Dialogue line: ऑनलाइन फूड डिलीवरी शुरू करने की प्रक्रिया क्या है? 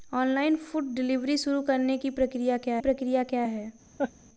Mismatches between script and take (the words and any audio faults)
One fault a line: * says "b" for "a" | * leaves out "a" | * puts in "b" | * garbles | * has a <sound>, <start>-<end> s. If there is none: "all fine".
* puts in "प्रक्रिया क्या"
* has a laugh, 4.0-4.1 s